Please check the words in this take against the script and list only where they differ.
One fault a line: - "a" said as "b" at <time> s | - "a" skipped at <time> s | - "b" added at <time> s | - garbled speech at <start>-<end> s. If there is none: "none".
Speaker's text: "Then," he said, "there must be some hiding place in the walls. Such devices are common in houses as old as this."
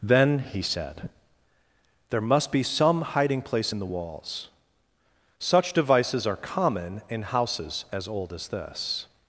none